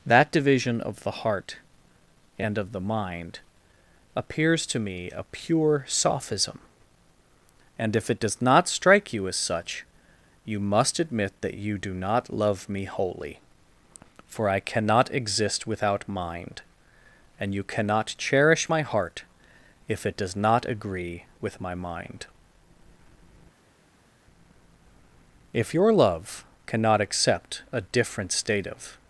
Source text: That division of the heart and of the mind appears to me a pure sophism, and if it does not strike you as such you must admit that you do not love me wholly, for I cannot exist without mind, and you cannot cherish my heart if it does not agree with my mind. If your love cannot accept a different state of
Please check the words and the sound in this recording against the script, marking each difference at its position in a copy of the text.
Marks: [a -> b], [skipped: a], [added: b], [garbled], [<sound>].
That division of the heart and of the mind appears to me a pure sophism, and if it does not strike you as such you must admit that you do not love me wholly, for I cannot exist without mind, and you cannot cherish my heart if it does not agree with my mind. If your love cannot accept a different state of